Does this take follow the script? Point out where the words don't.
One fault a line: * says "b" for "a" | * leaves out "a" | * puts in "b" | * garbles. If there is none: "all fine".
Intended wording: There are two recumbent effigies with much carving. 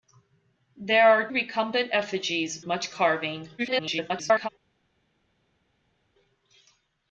* leaves out "two"
* leaves out "with"
* garbles